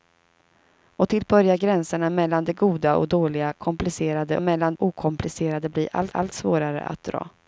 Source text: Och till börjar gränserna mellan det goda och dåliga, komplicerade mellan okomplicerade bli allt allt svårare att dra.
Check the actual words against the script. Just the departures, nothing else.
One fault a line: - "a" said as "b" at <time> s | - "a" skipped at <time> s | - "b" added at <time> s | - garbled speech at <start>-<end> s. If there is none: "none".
none